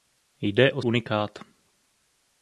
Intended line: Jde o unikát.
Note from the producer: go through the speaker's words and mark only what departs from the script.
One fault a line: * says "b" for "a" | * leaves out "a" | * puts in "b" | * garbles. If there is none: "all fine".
all fine